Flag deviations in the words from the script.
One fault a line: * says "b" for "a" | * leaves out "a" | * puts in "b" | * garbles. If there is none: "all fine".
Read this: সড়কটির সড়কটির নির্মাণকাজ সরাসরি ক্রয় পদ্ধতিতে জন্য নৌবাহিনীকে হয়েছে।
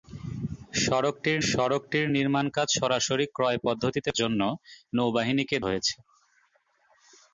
all fine